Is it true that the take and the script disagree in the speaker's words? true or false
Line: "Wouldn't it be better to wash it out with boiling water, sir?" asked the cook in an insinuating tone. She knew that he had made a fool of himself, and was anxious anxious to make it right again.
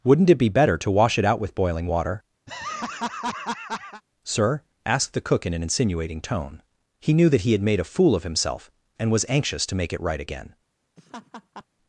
true